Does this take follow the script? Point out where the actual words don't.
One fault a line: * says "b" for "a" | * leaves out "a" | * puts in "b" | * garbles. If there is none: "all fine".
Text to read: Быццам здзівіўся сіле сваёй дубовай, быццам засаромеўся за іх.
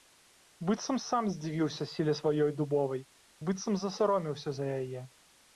* puts in "сам"
* says "яе" for "іх"